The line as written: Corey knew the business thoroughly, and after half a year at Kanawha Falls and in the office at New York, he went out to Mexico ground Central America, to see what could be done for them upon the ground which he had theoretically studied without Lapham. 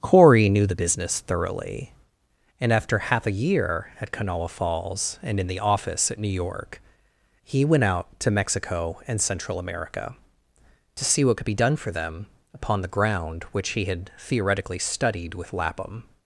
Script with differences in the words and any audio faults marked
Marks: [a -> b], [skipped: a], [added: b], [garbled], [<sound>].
Corey knew the business thoroughly, and after half a year at Kanawha Falls and in the office at New York, he went out to Mexico [ground -> and] Central America, to see what could be done for them upon the ground which he had theoretically studied [without -> with] Lapham.